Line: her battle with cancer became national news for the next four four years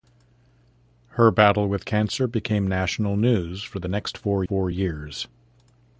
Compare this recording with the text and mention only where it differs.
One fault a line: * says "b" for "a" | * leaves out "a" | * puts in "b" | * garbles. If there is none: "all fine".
all fine